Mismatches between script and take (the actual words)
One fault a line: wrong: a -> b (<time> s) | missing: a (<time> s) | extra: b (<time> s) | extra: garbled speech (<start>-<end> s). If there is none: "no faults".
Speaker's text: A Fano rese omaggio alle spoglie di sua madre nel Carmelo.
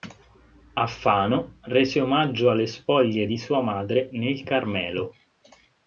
no faults